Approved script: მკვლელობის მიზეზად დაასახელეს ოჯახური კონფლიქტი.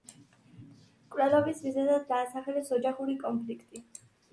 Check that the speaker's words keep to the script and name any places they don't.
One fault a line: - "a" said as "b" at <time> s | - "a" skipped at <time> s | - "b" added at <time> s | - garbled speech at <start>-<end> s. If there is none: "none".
none